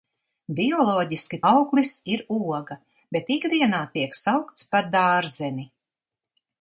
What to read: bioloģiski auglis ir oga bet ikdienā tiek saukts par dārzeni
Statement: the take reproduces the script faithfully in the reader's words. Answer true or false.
true